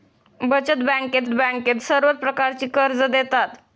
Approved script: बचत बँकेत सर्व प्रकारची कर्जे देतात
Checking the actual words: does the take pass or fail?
fail